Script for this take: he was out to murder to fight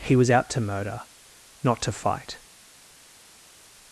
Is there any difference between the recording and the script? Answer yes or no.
yes